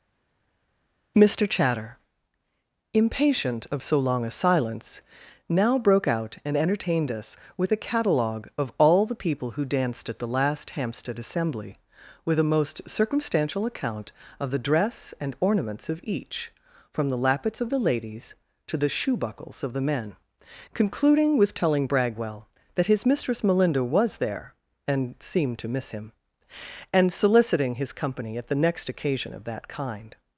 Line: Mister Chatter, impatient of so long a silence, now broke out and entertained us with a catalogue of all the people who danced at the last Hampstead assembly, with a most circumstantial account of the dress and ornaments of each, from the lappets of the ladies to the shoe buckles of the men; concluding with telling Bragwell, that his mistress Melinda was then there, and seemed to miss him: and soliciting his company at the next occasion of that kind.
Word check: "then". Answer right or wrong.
wrong